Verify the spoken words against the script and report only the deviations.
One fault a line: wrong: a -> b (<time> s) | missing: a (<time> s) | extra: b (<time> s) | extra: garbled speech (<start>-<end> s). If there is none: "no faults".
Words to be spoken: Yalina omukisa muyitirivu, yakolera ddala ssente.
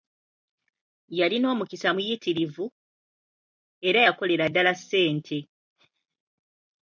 extra: era (3.9 s)